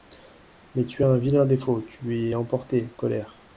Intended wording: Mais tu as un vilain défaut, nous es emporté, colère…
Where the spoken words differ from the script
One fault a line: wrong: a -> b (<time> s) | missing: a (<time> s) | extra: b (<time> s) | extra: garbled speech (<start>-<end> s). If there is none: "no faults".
wrong: nous -> tu (1.9 s)